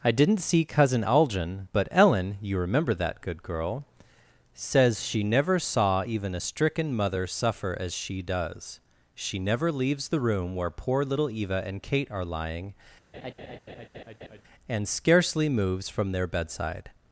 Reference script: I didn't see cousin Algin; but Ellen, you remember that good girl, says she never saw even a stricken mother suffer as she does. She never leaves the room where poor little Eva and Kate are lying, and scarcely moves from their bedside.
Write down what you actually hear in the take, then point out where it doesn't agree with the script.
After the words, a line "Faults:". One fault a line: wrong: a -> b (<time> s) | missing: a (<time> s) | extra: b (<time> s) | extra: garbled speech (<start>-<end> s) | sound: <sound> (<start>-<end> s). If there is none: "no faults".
I didn't see cousin Algin; but Ellen, you remember that good girl, says she never saw even a stricken mother suffer as she does. She never leaves the room where poor little Eva and Kate are lying, and scarcely moves from their bedside.
Faults:
sound: laugh (13.1-14.4 s)